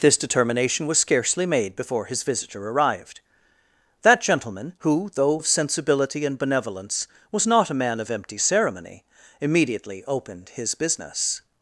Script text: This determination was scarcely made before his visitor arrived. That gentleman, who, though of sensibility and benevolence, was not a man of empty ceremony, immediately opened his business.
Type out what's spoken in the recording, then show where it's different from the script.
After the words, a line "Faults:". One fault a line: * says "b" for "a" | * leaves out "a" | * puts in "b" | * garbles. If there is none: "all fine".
This determination was scarcely made before his visitor arrived. That gentleman, who, though of sensibility and benevolence, was not a man of empty ceremony, immediately opened his business.
Faults:
all fine